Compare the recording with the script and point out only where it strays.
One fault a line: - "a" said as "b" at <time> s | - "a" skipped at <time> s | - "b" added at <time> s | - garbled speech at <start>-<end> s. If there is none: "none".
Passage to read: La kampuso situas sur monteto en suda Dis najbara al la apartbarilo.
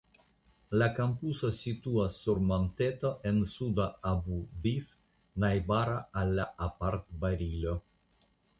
- "Abu" added at 4.1 s